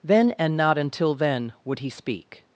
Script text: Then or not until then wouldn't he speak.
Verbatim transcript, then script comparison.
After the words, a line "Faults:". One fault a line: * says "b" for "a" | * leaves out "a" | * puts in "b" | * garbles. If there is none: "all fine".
Then and not until then would he speak.
Faults:
* says "and" for "or"
* says "would" for "wouldn't"